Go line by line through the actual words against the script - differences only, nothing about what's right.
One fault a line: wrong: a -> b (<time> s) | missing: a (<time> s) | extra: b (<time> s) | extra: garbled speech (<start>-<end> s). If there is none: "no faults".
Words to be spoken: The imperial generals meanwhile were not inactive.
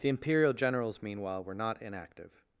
no faults